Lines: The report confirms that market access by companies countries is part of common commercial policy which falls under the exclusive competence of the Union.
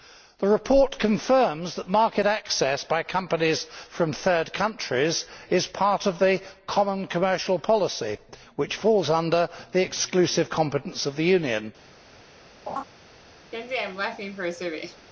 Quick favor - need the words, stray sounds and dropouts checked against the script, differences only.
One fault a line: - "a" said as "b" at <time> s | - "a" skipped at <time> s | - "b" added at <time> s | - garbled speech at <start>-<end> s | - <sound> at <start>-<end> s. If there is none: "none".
- "from third" added at 3.9 s
- "the" added at 6.2 s
- laugh at 12.7-12.8 s
- laugh at 13.5-15.1 s